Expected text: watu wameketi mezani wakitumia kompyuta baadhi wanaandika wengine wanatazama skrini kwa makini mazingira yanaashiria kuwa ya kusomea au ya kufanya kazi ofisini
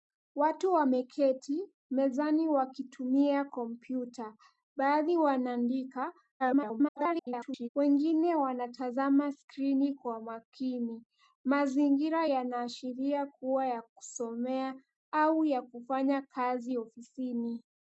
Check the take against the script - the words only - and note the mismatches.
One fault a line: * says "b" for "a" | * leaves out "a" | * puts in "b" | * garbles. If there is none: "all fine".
* garbles